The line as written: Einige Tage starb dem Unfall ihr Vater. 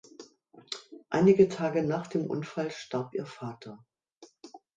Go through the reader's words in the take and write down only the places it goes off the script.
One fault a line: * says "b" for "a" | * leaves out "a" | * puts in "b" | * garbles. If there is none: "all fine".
* says "nach" for "starb"
* puts in "starb"